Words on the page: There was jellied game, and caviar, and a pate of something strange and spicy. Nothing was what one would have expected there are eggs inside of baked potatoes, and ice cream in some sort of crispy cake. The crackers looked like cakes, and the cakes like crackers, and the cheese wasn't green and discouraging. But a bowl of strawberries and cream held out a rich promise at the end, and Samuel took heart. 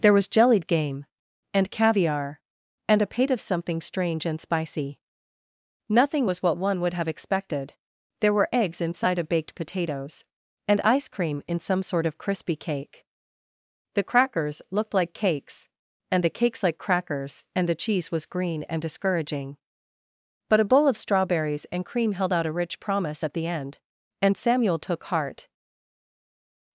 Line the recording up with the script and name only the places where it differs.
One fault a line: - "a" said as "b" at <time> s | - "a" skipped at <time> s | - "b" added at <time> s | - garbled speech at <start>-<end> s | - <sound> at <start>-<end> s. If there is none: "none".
- "are" said as "were" at 8.3 s
- "wasn't" said as "was" at 18.1 s